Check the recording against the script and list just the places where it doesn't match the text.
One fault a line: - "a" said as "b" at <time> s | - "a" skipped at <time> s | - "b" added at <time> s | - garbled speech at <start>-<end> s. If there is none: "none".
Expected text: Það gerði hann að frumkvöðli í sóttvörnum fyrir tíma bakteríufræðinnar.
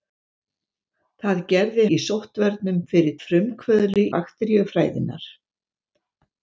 - "hann að frumkvöðli" skipped at 1.8 s
- "tíma" said as "frumkvöðli" at 3.3 s